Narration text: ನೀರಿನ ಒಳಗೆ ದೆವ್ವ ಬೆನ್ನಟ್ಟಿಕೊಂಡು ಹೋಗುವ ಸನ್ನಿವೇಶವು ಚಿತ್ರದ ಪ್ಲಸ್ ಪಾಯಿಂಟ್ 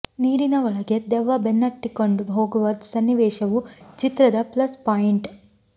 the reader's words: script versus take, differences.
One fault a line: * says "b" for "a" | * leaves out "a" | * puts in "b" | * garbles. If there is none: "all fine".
all fine